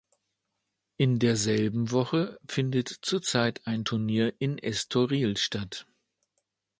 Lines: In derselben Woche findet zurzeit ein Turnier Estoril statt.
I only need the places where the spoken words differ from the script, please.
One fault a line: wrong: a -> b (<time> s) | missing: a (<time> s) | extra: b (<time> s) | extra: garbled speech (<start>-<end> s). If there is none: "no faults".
extra: in (4.4 s)